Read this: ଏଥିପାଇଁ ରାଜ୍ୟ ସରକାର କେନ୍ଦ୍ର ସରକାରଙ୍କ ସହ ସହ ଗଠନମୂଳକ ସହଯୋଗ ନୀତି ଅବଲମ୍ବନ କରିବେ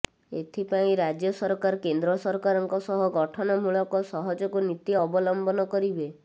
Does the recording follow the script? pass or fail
fail